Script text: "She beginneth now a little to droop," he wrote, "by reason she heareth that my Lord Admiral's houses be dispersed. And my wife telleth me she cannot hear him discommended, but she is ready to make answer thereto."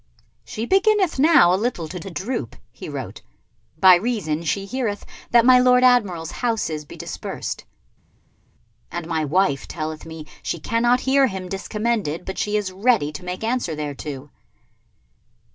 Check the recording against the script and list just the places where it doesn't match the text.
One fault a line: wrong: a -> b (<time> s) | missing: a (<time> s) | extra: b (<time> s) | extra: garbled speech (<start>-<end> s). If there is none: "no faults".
extra: to (2.0 s)